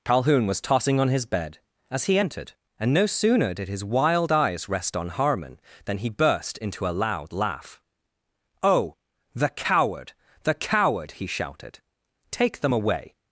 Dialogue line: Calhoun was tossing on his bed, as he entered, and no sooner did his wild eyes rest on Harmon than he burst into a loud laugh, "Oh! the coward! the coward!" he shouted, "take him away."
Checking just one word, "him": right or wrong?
wrong